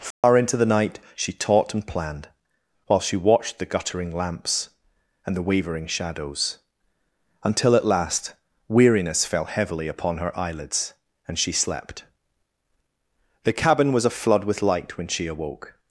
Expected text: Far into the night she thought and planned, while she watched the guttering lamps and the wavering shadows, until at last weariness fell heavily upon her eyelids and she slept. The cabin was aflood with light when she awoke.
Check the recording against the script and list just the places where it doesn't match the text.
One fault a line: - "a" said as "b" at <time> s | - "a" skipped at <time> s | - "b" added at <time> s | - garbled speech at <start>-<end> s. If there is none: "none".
- "thought" said as "taught" at 1.3 s